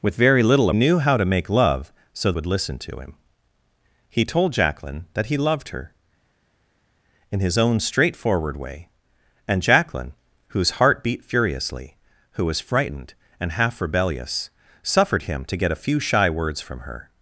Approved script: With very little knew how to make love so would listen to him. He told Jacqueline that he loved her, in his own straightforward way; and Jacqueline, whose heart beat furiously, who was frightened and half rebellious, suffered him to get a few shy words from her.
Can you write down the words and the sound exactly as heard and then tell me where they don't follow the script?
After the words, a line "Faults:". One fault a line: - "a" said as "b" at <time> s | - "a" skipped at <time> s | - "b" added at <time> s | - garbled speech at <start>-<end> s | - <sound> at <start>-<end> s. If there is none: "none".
With very little knew how to make love so would listen to him. He told Jacqueline that he loved her, in his own straightforward way; and Jacqueline, whose heart beat furiously, who was frightened and half rebellious, suffered him to get a few shy words from her.
Faults:
none